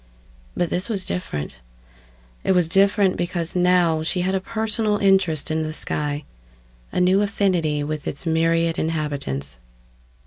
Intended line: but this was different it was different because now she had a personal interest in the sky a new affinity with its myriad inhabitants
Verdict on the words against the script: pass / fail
pass